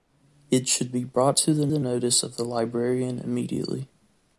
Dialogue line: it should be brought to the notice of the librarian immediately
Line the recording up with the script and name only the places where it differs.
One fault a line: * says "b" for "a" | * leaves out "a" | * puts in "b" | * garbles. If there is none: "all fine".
* puts in "the"